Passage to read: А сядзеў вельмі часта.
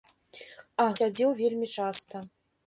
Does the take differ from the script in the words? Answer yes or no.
no